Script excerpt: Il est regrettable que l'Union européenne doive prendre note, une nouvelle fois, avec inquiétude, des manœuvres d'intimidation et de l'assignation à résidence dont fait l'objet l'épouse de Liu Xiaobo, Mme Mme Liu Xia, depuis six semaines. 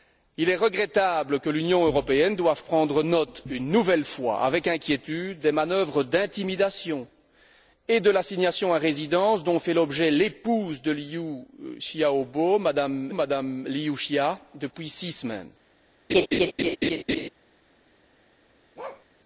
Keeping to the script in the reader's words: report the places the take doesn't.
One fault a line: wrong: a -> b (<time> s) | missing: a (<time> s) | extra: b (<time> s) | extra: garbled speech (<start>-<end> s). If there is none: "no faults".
no faults